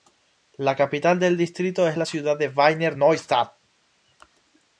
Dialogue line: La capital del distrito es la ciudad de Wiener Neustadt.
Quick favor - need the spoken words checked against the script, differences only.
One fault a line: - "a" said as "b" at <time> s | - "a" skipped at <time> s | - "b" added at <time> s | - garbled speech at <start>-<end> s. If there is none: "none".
none